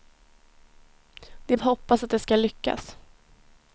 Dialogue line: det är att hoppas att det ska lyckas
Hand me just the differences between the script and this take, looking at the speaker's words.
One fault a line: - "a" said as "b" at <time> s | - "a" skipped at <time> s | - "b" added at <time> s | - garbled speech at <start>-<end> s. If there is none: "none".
none